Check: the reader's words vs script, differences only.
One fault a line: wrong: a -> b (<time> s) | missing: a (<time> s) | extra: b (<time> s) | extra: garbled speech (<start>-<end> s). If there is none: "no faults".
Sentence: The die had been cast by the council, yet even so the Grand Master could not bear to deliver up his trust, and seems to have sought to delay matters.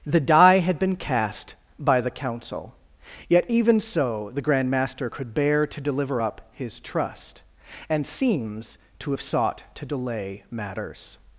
missing: not (5.3 s)